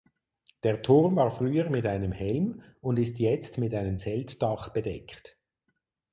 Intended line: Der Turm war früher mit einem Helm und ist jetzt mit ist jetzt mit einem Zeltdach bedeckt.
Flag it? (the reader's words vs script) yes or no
yes